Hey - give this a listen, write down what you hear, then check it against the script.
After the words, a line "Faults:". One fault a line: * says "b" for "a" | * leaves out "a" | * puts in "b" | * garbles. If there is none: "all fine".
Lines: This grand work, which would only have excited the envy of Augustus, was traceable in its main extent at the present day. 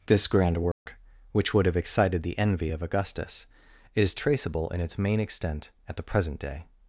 This grand work, which would have excited the envy of Augustus, is traceable in its main extent at the present day.
Faults:
* leaves out "only"
* says "is" for "was"